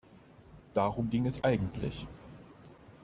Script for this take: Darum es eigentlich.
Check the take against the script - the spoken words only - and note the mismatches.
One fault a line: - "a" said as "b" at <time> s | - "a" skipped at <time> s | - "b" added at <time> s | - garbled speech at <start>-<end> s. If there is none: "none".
- "ging" added at 1.1 s